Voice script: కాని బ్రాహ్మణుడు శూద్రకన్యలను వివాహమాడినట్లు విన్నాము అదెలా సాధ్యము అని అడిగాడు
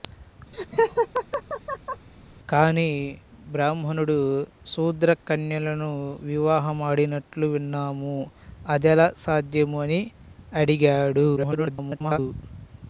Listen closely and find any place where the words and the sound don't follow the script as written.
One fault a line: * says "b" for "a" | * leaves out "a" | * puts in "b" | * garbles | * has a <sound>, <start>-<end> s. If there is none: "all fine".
* has a laugh, 0.5-2.1 s
* garbles